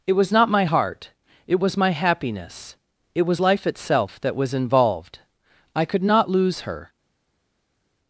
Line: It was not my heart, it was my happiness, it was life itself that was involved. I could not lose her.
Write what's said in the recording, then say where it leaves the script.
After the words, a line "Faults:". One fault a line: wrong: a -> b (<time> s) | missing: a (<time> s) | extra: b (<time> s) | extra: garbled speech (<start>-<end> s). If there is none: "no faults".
It was not my heart, it was my happiness, it was life itself that was involved. I could not lose her.
Faults:
no faults